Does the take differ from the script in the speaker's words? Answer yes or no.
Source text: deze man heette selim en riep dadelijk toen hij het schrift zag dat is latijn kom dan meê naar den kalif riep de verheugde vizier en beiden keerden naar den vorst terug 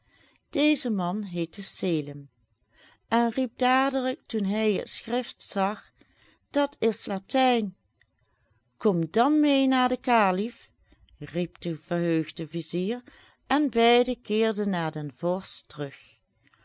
no